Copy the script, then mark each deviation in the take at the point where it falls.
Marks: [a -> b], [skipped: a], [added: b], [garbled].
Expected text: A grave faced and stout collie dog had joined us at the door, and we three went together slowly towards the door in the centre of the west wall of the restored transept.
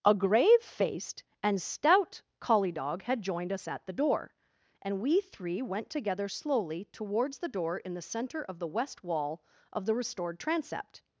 A grave faced and stout collie dog had joined us at the door, and we three went together slowly towards the door in the centre of the west wall of the restored transept.